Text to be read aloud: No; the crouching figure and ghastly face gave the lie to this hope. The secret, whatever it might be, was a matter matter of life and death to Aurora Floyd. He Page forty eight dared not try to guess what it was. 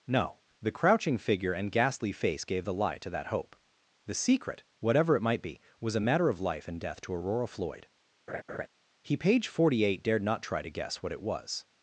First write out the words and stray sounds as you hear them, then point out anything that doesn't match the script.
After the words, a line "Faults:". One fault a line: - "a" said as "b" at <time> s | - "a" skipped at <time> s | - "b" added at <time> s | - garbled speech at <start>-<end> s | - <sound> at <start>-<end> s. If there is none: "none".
No; the crouching figure and ghastly face gave the lie to that hope. The secret, whatever it might be, was a matter of life and death to Aurora Floyd. He Page forty eight dared not try to guess what it was.
Faults:
- "this" said as "that" at 3.1 s
- "matter" skipped at 6.3 s
- laugh at 8.3-8.7 s